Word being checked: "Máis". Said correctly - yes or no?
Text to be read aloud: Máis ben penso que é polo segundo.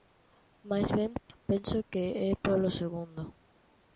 yes